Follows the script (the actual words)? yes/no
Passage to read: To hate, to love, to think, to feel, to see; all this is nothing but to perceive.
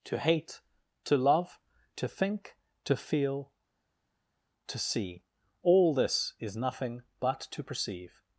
yes